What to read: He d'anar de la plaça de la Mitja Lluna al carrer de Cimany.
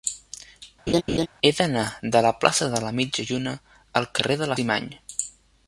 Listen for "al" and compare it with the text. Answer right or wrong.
right